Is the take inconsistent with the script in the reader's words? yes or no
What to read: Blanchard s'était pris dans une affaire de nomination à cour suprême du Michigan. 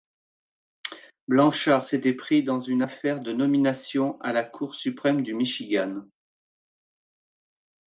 yes